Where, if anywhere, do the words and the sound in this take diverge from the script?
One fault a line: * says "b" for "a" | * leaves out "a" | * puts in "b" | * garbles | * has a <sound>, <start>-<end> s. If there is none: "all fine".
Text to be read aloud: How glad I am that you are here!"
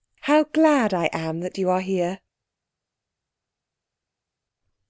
all fine